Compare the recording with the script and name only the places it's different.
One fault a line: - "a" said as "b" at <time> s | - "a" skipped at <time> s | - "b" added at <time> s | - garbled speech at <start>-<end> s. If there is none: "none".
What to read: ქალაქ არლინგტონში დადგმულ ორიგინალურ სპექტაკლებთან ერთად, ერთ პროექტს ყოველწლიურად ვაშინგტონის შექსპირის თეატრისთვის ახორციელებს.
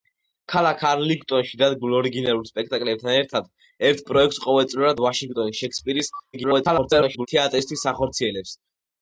- garbled speech at 6.3-7.3 s